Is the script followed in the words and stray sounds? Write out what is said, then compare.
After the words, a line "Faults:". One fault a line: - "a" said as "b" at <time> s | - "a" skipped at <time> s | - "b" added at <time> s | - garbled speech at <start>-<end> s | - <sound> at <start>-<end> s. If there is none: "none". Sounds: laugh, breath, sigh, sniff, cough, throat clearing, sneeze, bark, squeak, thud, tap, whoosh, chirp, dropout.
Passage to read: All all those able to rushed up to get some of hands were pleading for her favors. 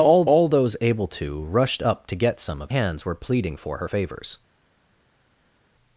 All all those able to rushed up to get some of hands were pleading for her favors.
Faults:
none